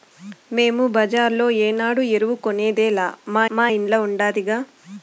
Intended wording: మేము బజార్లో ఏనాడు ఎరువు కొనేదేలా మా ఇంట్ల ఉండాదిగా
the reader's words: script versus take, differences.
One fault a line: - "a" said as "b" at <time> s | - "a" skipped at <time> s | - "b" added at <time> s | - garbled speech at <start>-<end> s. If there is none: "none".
- "మా" added at 3.5 s